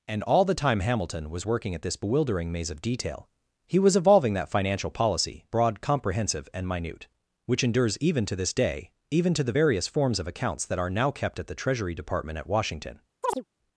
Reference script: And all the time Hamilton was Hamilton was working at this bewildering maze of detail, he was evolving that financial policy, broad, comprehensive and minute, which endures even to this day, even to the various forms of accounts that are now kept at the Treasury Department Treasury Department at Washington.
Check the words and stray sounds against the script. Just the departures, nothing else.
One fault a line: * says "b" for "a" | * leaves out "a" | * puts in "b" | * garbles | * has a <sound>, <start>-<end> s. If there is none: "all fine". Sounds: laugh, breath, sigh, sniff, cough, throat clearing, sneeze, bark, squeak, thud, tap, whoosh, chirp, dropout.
* leaves out "Hamilton was"
* leaves out "Treasury Department"
* has a chirp, 13.2-13.4 s